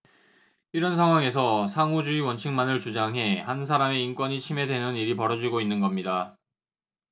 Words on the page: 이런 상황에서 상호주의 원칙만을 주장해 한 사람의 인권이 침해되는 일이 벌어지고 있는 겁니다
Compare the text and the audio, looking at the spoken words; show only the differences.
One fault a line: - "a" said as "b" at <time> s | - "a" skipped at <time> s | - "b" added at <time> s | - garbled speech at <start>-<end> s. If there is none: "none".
none